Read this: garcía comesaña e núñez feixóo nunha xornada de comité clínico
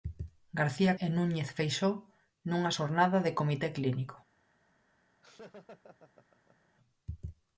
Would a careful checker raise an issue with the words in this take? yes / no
yes